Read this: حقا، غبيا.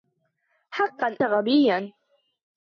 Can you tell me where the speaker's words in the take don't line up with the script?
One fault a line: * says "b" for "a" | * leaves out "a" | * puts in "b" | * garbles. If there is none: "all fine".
all fine